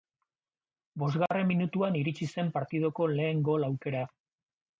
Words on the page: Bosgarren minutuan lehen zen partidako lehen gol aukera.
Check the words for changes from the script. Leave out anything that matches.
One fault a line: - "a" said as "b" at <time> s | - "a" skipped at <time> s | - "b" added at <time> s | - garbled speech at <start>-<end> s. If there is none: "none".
- "lehen" said as "iritsi" at 2.0 s